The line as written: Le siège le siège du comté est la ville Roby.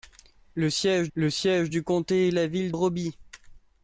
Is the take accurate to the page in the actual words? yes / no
yes